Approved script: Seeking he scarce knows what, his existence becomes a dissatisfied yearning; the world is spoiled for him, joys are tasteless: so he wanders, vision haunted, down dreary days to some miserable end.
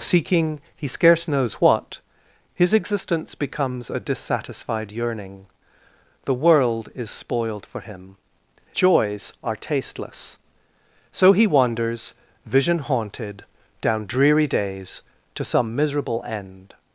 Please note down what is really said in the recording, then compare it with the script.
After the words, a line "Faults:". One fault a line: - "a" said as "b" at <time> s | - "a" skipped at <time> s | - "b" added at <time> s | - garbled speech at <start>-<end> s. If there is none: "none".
Seeking he scarce knows what, his existence becomes a dissatisfied yearning; the world is spoiled for him, joys are tasteless: so he wanders, vision haunted, down dreary days to some miserable end.
Faults:
none